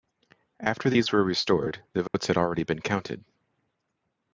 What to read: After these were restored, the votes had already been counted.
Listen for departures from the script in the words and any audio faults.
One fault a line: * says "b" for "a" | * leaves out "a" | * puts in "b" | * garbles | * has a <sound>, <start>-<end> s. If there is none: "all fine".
* has a dropout, 2.1-2.1 s